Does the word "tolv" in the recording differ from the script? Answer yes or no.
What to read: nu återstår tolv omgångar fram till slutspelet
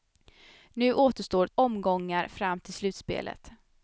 yes